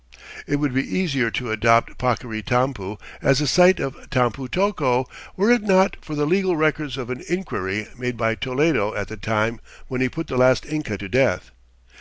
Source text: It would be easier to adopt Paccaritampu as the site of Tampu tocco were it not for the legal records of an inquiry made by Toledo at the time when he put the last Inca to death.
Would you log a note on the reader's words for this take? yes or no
no